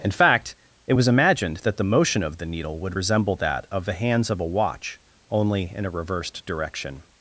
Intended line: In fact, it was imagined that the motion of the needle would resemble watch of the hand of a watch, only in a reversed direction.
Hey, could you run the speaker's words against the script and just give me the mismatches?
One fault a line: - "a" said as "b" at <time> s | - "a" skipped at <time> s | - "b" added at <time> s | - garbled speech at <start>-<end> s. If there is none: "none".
- "watch" said as "that" at 3.4 s
- "hand" said as "hands" at 3.9 s